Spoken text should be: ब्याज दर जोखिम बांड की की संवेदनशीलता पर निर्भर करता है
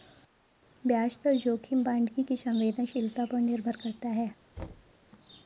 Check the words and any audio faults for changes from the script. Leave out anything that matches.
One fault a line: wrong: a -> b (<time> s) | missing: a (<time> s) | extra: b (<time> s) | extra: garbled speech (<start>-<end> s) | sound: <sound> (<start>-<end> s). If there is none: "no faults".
sound: thud (4.6-4.9 s)